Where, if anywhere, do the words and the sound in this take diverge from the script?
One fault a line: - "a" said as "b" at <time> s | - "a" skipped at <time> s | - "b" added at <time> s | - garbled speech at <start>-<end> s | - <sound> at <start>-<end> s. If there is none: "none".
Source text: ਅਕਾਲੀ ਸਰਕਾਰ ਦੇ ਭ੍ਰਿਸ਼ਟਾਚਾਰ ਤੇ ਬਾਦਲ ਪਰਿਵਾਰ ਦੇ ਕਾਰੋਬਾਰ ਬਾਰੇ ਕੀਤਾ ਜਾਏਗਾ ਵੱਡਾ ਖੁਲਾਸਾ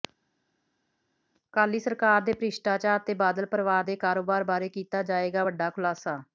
none